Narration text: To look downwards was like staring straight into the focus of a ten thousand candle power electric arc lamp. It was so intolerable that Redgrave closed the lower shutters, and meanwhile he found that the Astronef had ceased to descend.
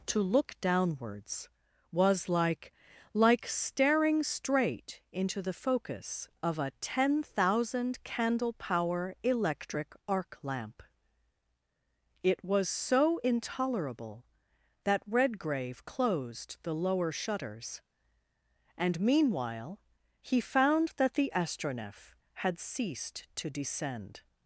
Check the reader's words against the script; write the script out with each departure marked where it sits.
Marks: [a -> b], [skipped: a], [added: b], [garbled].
To look downwards was like [added: like] staring straight into the focus of a ten thousand candle power electric arc lamp. It was so intolerable that Redgrave closed the lower shutters, and meanwhile he found that the Astronef had ceased to descend.